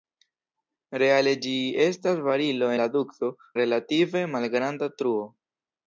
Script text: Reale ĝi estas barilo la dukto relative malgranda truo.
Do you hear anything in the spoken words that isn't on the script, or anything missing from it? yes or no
no